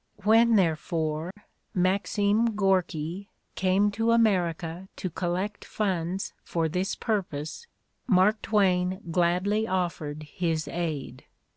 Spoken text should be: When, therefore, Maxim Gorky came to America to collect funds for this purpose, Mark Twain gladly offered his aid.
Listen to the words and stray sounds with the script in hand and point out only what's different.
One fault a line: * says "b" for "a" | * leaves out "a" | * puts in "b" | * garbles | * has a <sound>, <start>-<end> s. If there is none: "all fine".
* has a dropout, 1.3-1.4 s